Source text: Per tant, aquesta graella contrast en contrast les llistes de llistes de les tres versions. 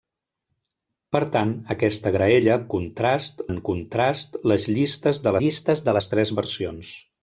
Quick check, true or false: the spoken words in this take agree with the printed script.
true